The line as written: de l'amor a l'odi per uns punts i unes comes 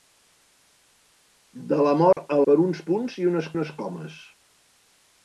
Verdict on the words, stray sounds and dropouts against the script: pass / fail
fail